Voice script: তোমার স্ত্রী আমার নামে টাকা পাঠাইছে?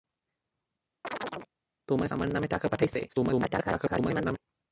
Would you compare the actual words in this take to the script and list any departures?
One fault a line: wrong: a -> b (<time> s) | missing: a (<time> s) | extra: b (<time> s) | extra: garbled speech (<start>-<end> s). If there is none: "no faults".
missing: স্ত্রী (2.1 s)
extra: garbled speech (3.1-4.4 s)